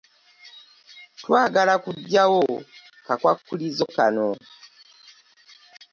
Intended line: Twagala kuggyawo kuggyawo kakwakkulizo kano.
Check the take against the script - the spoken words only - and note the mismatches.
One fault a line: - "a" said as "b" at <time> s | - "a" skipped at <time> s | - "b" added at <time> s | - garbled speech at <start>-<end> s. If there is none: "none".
- "kuggyawo" skipped at 2.4 s